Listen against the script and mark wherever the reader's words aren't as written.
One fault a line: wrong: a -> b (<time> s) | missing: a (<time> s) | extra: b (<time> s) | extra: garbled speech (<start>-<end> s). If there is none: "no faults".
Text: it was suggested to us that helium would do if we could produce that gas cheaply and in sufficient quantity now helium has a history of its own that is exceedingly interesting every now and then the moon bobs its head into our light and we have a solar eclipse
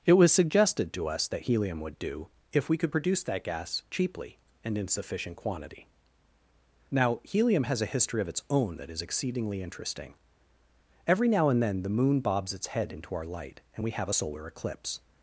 no faults